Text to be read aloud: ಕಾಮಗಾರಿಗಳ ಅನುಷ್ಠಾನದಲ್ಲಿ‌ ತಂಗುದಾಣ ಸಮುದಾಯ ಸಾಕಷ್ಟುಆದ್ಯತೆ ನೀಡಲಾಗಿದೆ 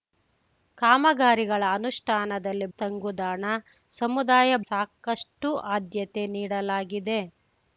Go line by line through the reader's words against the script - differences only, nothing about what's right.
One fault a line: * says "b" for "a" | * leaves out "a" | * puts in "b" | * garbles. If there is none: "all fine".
all fine